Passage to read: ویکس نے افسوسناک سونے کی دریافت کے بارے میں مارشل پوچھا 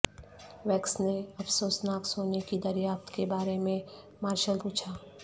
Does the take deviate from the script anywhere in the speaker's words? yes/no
no